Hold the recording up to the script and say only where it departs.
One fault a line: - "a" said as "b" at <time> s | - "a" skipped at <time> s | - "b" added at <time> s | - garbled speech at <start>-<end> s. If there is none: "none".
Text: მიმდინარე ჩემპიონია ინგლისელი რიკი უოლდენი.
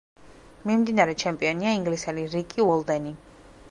none